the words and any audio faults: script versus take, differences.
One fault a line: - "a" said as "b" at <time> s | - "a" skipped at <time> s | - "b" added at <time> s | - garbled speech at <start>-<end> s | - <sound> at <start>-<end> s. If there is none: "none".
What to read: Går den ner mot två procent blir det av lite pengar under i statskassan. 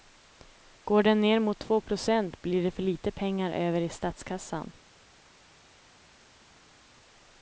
- "av" said as "för" at 2.7 s
- "under" said as "över" at 3.5 s